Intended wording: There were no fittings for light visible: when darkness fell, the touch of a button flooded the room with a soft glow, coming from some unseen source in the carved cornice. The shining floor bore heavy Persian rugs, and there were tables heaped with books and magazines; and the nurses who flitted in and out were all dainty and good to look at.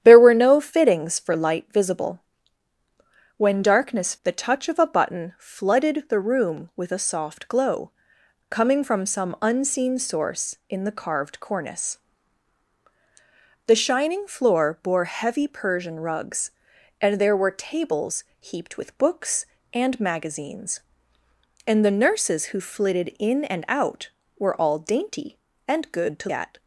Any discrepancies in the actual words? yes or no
yes